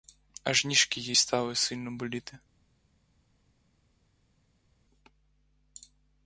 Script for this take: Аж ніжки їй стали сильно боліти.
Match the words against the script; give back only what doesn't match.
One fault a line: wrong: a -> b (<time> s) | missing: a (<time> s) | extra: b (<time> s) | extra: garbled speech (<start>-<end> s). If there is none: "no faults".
no faults